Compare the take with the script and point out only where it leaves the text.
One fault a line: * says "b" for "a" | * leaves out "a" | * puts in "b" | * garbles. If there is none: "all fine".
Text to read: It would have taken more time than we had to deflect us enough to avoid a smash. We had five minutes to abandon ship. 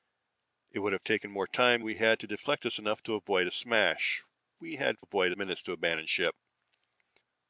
* leaves out "than"
* says "avoid" for "five"